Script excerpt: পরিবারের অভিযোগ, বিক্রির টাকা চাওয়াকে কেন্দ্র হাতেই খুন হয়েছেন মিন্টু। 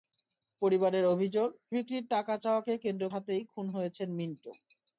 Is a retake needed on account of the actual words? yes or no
no